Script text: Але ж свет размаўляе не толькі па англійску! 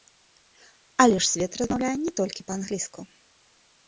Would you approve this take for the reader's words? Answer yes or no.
yes